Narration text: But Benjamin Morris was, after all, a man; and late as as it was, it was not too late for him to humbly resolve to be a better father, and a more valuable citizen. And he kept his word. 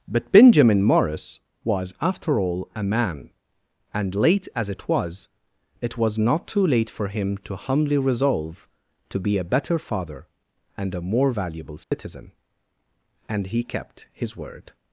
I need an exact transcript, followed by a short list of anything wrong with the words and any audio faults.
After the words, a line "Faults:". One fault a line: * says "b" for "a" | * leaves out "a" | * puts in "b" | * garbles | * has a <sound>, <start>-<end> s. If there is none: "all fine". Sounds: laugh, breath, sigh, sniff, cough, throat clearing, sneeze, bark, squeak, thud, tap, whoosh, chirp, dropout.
But Benjamin Morris was, after all, a man; and late as it was, it was not too late for him to humbly resolve to be a better father, and a more valuable citizen. And he kept his word.
Faults:
* leaves out "as"
* has a dropout, 11.8-11.9 s